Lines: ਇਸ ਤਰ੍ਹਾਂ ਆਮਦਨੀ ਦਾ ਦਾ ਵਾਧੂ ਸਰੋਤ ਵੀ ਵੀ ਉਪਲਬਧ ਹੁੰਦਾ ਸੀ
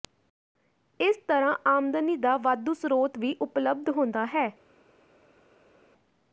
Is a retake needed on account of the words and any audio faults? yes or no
yes